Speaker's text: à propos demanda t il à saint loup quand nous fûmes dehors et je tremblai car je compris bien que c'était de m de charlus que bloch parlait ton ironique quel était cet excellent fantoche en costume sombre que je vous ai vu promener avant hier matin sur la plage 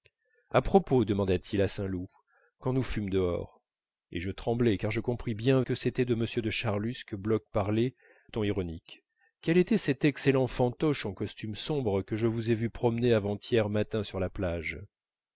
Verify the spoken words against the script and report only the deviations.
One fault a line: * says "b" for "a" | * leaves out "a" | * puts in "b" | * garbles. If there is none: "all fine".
all fine